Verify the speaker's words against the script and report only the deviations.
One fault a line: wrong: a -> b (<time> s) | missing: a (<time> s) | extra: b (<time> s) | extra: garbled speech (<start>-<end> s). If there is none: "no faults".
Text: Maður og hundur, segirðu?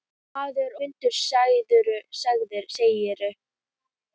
missing: og (0.8 s)